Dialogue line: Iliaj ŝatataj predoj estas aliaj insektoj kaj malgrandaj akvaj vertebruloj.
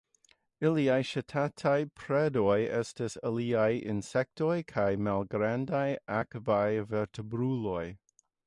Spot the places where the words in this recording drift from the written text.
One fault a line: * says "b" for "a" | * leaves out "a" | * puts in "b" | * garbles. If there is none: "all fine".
all fine